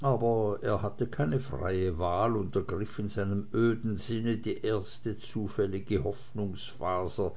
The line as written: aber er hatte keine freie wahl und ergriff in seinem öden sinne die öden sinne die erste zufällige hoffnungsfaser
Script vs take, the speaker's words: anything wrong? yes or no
yes